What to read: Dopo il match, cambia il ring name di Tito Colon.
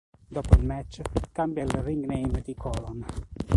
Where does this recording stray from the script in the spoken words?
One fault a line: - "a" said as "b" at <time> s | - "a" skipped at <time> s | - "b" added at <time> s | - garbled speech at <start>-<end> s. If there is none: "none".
- "Tito" skipped at 2.5 s